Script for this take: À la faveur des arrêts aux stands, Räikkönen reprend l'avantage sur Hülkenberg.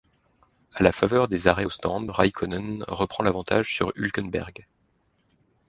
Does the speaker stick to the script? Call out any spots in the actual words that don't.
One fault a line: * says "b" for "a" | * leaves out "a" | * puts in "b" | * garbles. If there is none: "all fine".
all fine